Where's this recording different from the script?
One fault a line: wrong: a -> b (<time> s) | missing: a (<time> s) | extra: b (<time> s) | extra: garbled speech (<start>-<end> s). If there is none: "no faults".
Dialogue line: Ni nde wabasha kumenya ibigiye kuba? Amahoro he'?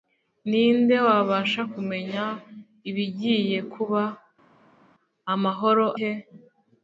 no faults